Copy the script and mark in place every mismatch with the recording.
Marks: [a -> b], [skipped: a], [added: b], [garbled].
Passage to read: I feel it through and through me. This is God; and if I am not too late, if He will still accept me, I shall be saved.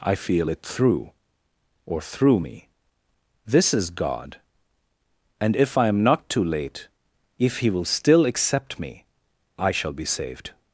I feel it through [and -> or] through me. This is God; and if I am not too late, if He will still accept me, I shall be saved.